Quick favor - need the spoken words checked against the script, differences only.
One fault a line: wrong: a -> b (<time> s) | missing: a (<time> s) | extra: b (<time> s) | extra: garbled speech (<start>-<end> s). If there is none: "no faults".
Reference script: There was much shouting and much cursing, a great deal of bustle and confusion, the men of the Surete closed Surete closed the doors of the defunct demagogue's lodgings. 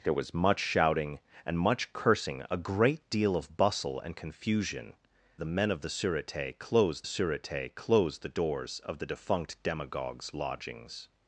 no faults